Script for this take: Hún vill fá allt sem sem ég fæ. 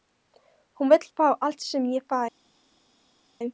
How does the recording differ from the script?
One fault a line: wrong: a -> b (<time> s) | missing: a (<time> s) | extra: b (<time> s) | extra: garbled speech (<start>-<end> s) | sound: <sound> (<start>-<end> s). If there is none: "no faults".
missing: sem (1.9 s)